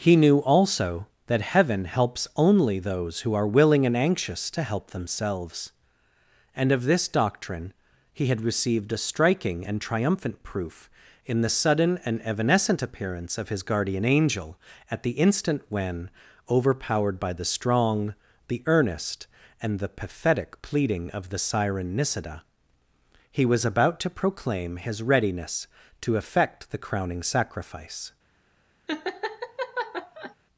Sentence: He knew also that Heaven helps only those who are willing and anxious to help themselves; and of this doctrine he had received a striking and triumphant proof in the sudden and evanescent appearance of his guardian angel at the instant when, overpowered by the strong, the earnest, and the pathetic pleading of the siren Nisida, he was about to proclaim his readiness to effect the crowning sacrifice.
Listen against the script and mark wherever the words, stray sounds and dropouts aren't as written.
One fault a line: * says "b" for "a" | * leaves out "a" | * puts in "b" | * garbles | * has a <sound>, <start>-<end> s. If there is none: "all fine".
* has a laugh, 28.9-30.4 s